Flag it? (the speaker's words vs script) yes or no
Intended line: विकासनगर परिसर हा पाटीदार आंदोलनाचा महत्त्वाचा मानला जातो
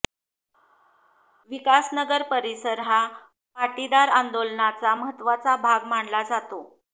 yes